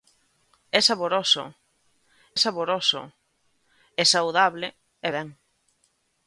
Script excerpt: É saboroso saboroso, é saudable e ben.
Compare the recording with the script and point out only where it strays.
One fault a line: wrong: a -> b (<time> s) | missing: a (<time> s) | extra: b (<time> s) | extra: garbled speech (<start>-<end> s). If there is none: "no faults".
no faults